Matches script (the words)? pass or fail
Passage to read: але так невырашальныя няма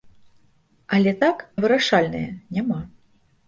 pass